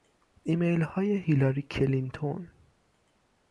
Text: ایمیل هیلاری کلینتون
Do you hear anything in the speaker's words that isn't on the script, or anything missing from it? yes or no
yes